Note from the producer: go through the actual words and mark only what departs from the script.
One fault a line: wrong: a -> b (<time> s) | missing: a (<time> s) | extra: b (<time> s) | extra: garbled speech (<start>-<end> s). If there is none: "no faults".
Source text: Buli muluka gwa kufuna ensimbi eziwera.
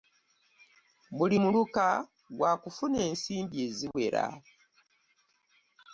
no faults